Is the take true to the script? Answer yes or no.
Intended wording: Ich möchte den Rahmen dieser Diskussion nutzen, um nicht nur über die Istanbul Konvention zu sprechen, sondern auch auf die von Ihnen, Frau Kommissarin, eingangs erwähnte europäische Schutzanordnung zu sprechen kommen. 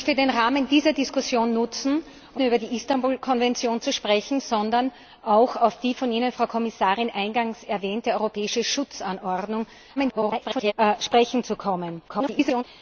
no